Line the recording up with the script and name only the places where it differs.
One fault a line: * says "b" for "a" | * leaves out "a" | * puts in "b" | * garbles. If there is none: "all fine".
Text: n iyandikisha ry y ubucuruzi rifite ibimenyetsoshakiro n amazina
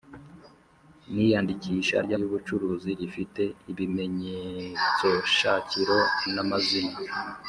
all fine